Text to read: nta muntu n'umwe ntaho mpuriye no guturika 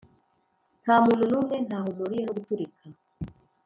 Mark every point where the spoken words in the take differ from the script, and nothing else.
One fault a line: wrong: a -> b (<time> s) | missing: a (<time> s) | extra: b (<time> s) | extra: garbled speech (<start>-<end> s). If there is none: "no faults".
no faults